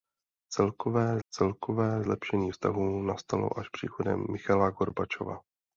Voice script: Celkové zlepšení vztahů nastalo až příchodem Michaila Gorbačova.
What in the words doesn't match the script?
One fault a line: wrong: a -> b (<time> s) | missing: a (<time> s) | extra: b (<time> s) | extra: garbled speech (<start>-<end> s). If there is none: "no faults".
extra: celkové (1.3 s)